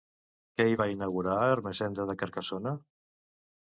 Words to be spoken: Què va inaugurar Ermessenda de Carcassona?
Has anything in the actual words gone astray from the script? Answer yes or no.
yes